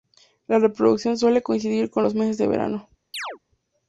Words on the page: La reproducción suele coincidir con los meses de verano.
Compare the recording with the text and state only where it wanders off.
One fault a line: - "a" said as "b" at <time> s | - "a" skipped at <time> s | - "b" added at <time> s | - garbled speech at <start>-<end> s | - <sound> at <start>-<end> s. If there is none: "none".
- chirp at 3.1-3.4 s